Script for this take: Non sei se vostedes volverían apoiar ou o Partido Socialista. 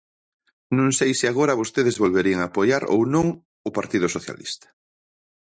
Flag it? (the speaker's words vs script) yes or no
yes